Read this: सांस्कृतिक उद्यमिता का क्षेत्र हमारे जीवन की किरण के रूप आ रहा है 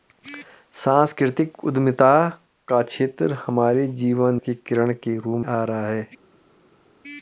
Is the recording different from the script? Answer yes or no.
no